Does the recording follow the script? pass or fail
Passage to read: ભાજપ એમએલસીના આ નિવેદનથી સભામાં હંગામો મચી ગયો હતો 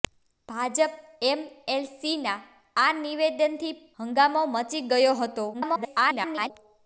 fail